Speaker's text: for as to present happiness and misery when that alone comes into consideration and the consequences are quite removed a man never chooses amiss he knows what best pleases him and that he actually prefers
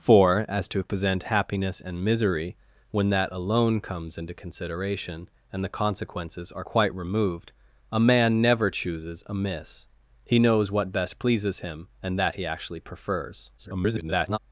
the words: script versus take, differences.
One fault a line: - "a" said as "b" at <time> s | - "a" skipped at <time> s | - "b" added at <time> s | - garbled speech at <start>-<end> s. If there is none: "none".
- garbled speech at 13.6-14.4 s